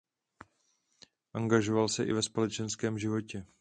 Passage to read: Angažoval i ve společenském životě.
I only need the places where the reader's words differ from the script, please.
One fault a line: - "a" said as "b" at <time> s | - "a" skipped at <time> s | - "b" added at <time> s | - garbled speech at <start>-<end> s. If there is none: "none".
- "se" added at 1.9 s